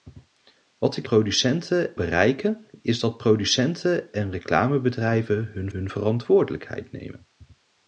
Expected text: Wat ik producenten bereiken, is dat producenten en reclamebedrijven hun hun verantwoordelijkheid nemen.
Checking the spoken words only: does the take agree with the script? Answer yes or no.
yes